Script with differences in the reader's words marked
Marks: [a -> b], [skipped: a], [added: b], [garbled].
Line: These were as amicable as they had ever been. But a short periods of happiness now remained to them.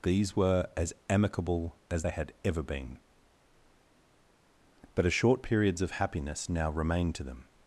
These were as amicable as they had ever been. But a short periods of happiness now remained to them.